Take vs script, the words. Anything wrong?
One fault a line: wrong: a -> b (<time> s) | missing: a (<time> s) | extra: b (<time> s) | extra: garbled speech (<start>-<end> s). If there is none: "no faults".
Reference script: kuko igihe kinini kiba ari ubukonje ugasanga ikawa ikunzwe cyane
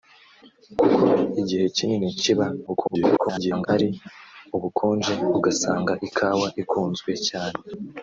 extra: garbled speech (2.7-3.7 s)